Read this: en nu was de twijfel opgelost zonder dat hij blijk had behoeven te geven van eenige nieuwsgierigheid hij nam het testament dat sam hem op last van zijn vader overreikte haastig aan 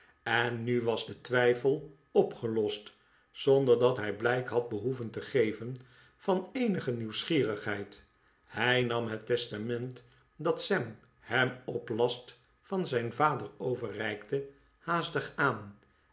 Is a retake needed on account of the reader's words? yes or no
no